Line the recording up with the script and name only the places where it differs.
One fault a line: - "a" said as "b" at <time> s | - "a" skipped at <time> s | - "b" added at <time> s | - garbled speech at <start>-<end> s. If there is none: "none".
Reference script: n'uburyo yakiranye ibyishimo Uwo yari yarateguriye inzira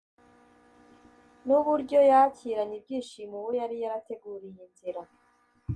none